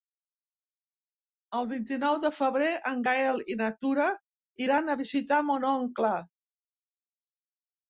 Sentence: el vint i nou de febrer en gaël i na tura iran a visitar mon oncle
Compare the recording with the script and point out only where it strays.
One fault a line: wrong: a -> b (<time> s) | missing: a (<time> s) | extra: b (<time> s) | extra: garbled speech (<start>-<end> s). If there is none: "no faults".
no faults